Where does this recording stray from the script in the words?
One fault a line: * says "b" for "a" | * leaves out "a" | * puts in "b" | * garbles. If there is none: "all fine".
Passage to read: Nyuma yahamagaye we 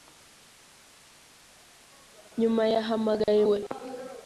all fine